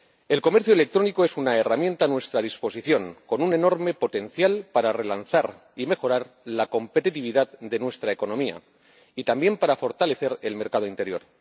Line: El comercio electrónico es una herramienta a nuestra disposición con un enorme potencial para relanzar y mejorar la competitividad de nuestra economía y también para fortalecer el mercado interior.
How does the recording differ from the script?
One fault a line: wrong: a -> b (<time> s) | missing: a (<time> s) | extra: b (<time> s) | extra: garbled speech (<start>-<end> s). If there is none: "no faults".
no faults